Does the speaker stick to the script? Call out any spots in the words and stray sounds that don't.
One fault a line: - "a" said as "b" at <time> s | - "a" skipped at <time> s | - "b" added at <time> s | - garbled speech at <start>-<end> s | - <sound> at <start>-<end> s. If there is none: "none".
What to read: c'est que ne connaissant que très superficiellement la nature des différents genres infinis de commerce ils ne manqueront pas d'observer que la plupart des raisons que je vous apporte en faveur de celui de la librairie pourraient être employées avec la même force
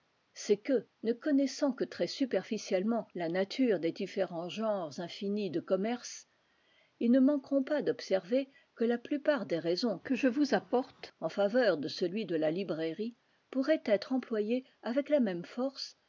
none